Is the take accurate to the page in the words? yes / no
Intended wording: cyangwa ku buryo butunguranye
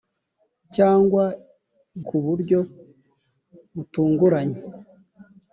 yes